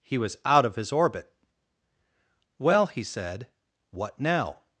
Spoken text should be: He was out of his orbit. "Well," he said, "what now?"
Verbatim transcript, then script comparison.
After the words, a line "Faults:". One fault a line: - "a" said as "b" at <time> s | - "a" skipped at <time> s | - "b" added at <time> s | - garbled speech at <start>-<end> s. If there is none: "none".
He was out of his orbit. "Well," he said, "what now?"
Faults:
none